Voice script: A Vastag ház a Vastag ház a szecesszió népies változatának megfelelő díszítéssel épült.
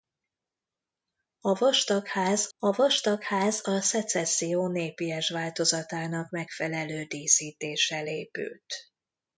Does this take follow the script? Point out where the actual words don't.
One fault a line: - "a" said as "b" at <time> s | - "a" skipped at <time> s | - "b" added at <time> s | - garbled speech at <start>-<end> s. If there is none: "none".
none